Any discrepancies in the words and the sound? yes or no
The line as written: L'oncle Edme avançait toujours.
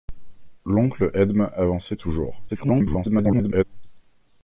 yes